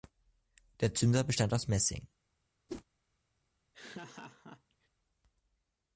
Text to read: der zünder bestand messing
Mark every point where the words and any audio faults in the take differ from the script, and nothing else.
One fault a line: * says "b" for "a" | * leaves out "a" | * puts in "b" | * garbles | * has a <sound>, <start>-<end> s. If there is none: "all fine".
* puts in "aus"
* has a whoosh, 2.7-2.8 s
* has a laugh, 3.7-4.9 s